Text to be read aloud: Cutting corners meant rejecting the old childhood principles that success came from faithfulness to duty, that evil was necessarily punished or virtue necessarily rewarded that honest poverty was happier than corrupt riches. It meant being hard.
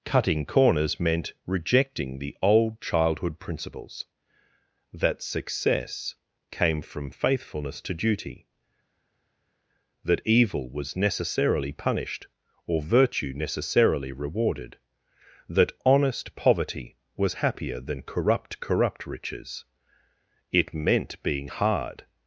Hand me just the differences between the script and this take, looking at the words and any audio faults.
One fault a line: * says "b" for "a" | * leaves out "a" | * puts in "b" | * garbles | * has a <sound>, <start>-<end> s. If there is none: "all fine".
* puts in "corrupt"